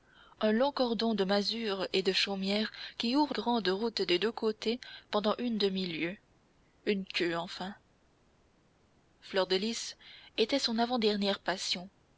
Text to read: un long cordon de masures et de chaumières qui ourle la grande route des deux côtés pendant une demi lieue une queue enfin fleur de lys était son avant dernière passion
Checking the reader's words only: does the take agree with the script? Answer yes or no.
no